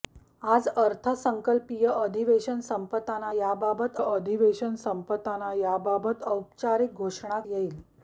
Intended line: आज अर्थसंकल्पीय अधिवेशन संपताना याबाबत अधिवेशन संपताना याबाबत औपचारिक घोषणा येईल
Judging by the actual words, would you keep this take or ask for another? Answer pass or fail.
pass